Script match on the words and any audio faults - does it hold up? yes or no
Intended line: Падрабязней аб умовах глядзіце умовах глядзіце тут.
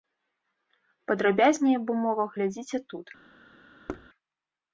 no